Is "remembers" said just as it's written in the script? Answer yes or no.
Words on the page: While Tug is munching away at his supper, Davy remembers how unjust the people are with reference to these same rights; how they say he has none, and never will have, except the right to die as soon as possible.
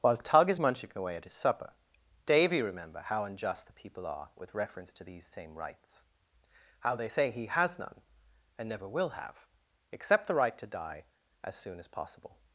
no